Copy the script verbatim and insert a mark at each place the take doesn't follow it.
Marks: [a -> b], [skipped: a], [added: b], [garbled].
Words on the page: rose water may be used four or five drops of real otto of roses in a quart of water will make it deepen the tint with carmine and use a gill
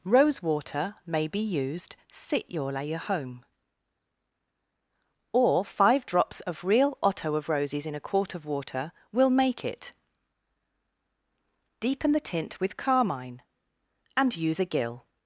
rose water may be used [four -> sit your layer home] or five drops of real otto of roses in a quart of water will make it deepen the tint with carmine and use a gill